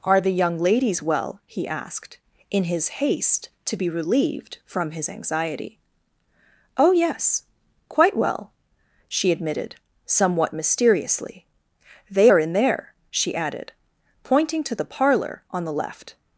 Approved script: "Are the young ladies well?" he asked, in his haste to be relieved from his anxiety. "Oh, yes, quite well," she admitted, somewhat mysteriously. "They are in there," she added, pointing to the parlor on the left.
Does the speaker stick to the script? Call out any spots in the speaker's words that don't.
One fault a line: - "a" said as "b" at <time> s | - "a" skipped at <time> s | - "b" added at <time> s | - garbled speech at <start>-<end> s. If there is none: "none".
none